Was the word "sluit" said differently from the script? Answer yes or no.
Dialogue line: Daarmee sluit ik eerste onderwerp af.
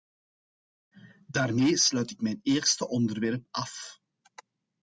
no